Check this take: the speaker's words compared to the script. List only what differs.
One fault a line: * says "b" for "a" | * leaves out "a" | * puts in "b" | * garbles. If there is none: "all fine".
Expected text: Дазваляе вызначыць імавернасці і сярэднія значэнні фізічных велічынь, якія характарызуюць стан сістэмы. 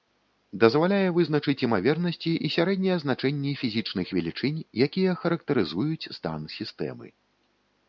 all fine